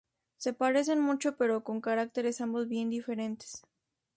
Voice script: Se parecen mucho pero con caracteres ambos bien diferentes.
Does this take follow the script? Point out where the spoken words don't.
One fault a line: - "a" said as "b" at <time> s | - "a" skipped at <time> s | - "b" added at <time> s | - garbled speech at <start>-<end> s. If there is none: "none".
none